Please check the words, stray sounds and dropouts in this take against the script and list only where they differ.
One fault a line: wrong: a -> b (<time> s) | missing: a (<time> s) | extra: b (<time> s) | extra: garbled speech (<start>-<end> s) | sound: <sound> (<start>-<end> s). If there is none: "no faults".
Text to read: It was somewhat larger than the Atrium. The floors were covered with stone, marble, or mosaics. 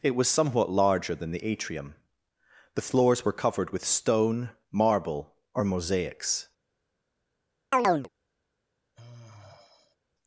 sound: chirp (7.7-8.1 s)
sound: sigh (8.9-10.0 s)